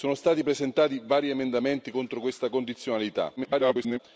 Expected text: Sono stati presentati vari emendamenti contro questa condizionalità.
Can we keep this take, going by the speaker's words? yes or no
no